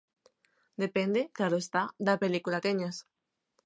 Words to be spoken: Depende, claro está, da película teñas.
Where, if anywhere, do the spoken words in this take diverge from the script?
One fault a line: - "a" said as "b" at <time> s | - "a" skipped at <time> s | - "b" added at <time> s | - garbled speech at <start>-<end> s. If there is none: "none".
none